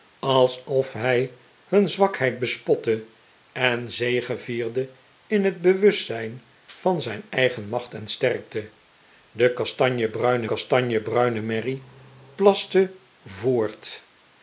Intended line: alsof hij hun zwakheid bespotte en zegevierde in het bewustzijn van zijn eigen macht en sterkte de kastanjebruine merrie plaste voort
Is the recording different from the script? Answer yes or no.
yes